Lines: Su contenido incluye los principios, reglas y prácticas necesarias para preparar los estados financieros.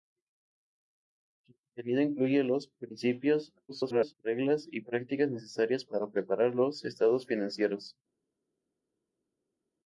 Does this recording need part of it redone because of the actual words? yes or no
yes